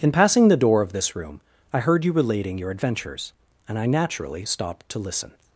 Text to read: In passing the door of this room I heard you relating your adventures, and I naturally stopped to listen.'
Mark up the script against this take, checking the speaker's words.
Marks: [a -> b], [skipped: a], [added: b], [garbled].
In passing the door of this room I heard you relating your adventures, and I naturally stopped to listen.'